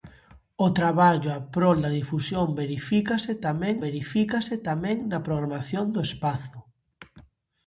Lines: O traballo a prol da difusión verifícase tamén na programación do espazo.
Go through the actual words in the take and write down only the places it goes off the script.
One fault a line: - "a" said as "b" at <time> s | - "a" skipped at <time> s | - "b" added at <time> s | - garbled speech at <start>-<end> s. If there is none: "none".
- "verifícase tamén" added at 3.9 s